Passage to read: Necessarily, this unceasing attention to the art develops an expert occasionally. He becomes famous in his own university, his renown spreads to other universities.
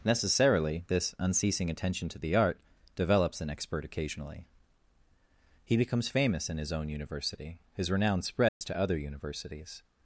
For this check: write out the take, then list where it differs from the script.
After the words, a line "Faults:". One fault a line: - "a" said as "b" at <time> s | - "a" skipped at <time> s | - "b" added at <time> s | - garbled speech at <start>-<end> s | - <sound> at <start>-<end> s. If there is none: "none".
Necessarily, this unceasing attention to the art develops an expert occasionally. He becomes famous in his own university, his renown spreads to other universities.
Faults:
- dropout at 8.5-8.6 s